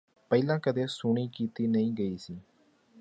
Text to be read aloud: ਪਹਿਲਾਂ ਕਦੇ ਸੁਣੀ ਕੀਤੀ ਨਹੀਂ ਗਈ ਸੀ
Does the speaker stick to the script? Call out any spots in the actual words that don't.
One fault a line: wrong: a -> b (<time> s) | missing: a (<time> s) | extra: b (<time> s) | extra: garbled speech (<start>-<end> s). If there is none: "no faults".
no faults